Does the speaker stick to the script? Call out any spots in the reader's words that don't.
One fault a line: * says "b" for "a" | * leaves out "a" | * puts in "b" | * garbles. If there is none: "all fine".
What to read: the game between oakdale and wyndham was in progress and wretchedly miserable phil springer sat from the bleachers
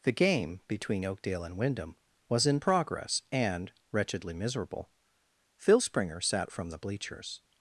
all fine